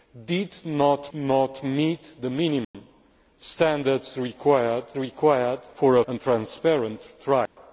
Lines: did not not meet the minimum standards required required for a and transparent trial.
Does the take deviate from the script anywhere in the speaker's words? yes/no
no